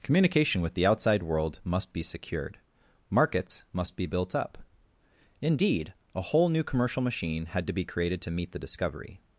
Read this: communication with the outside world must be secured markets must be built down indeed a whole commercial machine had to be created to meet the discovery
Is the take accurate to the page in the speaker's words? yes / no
no